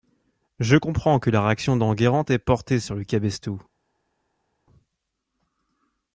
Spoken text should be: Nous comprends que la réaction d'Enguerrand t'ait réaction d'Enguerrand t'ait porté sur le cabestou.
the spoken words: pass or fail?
fail